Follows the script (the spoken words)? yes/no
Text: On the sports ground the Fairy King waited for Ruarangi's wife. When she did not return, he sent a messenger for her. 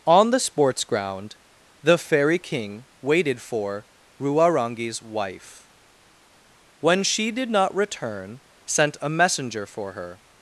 no